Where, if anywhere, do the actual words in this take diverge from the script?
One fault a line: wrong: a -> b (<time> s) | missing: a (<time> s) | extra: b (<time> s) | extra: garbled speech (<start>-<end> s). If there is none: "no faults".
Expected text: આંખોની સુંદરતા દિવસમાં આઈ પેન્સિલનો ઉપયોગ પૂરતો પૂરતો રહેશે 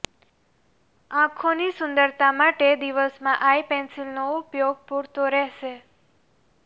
extra: માટે (2.4 s)
missing: પૂરતો (5.3 s)